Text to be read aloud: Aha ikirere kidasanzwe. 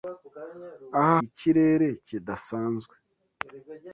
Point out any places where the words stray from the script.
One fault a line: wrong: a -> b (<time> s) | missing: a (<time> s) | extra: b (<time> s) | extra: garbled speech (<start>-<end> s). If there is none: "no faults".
no faults